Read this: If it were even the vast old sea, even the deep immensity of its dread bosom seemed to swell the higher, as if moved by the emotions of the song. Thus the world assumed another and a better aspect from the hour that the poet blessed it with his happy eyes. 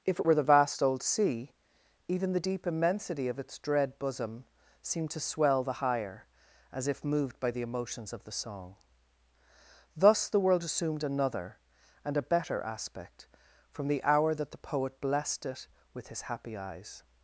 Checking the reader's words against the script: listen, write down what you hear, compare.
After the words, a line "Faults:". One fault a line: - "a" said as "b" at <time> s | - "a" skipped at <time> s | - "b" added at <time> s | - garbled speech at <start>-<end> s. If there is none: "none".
If it were the vast old sea, even the deep immensity of its dread bosom seemed to swell the higher, as if moved by the emotions of the song. Thus the world assumed another and a better aspect from the hour that the poet blessed it with his happy eyes.
Faults:
- "even" skipped at 0.3 s